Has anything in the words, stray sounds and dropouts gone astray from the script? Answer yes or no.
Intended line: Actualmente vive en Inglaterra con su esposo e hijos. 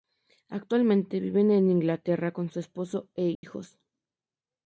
yes